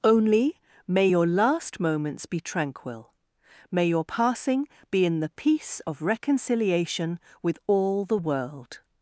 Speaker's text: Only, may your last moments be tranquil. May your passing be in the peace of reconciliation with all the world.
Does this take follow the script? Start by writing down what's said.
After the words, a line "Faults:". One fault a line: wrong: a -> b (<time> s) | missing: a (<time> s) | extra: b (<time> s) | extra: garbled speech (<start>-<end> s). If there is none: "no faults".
Only, may your last moments be tranquil. May your passing be in the peace of reconciliation with all the world.
Faults:
no faults